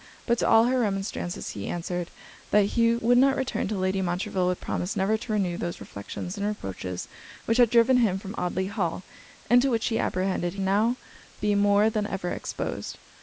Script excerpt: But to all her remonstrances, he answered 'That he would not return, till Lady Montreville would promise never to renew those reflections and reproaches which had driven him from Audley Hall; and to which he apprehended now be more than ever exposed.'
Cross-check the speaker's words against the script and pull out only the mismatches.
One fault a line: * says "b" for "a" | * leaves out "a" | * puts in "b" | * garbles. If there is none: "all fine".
all fine